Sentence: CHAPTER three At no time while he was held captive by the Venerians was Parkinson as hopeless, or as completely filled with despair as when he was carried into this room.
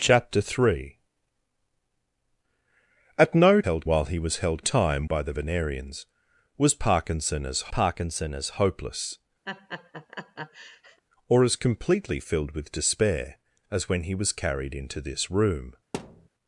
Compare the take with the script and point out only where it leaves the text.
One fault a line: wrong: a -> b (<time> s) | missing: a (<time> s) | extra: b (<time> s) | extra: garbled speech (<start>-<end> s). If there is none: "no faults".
wrong: time -> held (3.6 s)
wrong: captive -> time (4.6 s)
extra: Parkinson as (7.7 s)